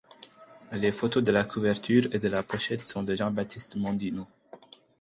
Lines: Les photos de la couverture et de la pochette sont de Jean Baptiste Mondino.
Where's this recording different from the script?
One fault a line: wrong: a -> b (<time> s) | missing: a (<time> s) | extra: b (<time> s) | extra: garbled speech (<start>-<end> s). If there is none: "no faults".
no faults